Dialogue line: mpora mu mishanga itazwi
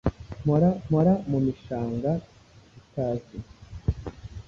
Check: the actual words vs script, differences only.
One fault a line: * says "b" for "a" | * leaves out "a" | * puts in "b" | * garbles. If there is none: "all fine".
* puts in "mpora"